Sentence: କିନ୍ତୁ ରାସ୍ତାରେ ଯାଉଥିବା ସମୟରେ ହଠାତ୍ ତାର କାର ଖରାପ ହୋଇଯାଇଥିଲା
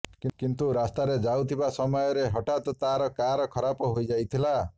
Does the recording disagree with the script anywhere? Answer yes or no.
no